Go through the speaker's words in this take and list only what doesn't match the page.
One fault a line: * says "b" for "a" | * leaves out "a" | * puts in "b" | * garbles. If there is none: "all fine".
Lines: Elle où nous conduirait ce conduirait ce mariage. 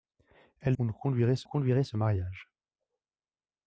all fine